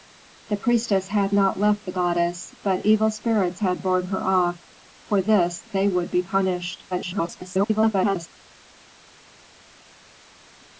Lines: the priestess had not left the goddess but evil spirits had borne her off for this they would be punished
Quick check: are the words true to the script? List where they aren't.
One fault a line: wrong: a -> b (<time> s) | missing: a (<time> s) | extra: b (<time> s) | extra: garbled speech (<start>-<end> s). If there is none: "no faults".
extra: garbled speech (6.9-8.3 s)